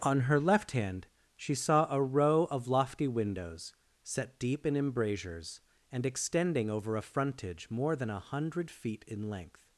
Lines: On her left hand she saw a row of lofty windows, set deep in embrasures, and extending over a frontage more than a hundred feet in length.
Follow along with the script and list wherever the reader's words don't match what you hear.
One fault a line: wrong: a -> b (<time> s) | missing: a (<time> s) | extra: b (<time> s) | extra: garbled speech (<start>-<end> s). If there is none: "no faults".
no faults